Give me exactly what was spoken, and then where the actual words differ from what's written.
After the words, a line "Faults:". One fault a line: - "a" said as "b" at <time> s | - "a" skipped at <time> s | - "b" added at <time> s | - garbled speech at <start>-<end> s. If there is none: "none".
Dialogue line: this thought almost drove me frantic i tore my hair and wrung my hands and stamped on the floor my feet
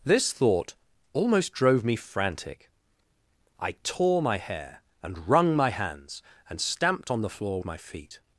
this thought almost drove me frantic i tore my hair and wrung my hands and stamped on the floor my feet
Faults:
none